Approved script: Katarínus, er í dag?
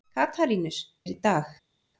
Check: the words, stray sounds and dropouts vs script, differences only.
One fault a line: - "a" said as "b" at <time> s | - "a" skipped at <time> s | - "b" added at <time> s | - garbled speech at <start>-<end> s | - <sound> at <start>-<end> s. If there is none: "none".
none